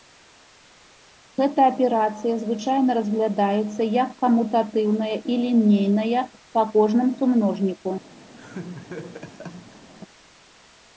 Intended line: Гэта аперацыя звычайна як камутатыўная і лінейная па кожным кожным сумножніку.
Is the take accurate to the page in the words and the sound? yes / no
no